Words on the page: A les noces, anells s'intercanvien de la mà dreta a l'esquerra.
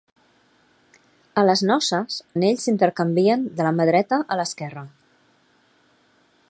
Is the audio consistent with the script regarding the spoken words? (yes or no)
yes